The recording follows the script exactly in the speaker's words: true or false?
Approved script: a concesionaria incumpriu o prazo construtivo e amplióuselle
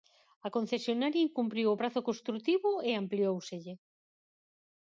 true